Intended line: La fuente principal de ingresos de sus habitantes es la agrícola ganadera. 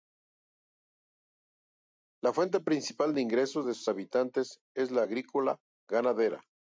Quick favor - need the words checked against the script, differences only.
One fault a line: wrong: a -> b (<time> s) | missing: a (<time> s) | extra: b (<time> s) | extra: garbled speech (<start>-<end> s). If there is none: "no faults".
no faults